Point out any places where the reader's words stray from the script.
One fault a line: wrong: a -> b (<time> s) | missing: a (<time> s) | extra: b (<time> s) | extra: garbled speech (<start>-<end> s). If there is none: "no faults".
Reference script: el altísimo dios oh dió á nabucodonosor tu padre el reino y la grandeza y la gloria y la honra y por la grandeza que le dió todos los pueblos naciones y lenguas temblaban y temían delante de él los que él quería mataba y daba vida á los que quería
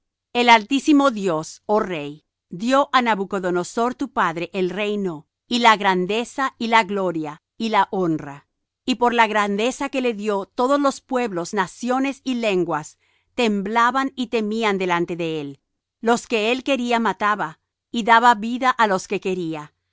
extra: rey (1.8 s)